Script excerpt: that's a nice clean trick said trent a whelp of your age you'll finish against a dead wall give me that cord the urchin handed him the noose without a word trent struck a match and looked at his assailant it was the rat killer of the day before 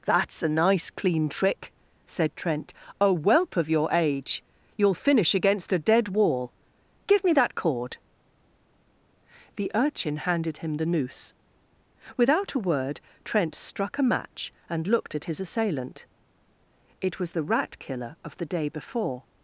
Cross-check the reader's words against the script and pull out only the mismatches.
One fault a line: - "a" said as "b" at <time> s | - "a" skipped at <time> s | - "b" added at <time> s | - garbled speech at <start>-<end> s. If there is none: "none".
none